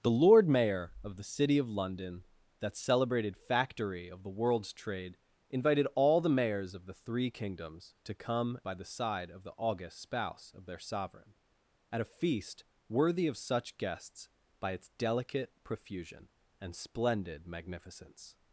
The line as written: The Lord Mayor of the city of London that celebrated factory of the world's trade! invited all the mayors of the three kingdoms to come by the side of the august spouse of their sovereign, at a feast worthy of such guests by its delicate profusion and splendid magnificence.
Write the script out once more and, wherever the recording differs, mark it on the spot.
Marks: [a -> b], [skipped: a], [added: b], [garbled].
The Lord Mayor of the city of London that celebrated factory of the world's trade! invited all the mayors of the three kingdoms to come by the side of the august spouse of their sovereign, at a feast worthy of such guests by its delicate profusion and splendid magnificence.